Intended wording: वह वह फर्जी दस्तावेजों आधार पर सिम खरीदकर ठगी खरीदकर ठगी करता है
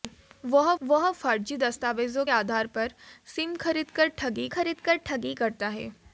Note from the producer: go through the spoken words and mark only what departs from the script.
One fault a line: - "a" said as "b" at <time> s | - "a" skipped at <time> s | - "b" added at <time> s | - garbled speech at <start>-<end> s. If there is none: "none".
none